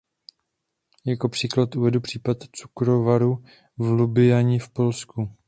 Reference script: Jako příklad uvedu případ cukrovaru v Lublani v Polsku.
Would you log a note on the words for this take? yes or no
no